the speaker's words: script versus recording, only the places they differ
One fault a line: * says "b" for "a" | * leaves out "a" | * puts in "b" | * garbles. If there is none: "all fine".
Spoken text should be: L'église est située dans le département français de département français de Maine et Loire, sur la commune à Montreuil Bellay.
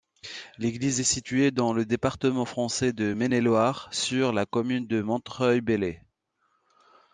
* leaves out "département français de"
* says "de" for "à"